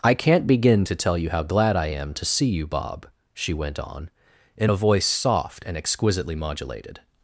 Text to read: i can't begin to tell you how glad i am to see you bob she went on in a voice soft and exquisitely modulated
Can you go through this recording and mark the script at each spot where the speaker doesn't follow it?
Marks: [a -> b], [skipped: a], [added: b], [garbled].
i can't begin to tell you how glad i am to see you bob she went on in a voice soft and exquisitely modulated